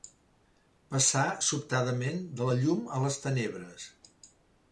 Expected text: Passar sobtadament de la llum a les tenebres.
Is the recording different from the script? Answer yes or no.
no